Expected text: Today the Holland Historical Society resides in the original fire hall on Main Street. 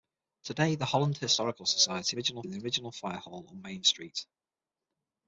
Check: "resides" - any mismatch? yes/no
yes